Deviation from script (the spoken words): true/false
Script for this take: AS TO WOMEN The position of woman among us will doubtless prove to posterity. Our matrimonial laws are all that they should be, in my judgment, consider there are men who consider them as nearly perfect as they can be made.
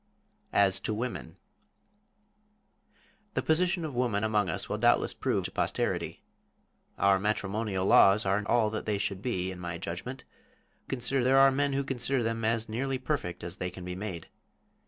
false